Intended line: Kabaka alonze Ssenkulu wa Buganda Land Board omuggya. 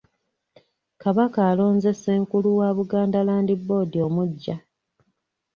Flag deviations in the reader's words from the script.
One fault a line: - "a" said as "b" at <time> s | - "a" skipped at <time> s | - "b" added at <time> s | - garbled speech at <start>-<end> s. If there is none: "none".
none